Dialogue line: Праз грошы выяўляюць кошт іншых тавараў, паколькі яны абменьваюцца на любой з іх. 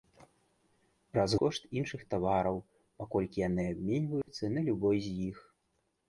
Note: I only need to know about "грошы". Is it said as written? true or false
false